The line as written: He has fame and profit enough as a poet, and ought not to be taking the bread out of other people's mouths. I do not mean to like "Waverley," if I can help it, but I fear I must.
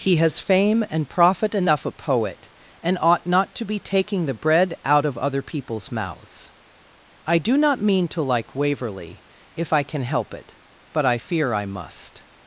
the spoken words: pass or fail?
fail